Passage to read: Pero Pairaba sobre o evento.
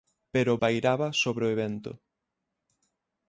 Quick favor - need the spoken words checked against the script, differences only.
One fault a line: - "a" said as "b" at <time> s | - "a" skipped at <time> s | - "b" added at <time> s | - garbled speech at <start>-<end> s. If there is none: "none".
none